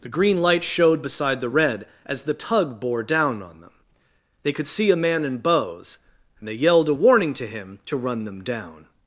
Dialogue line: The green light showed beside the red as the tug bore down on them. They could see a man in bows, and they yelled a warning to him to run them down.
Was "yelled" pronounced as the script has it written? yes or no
yes